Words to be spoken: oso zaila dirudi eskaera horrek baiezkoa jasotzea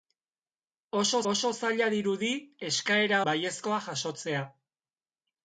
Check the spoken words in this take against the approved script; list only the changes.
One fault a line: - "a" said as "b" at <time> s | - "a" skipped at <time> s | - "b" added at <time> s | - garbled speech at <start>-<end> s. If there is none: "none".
- "oso" added at 1.3 s
- "horrek" skipped at 3.2 s